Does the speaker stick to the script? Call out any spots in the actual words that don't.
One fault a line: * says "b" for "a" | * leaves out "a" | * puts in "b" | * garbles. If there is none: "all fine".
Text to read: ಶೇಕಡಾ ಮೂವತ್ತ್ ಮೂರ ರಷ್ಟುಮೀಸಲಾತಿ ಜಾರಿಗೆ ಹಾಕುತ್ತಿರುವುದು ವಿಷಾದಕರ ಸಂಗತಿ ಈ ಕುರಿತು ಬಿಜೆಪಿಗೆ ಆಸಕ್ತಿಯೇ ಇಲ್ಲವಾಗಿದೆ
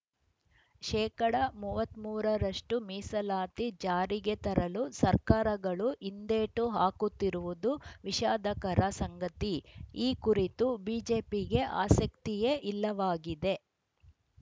* puts in "ತರಲು ಸರ್ಕಾರಗಳು ಹಿಂದೇಟು"